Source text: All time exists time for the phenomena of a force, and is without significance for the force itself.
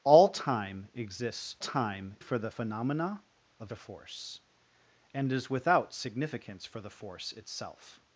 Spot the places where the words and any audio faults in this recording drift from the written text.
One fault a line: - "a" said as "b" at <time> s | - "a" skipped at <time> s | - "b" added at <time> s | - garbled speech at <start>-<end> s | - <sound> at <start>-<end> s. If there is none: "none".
none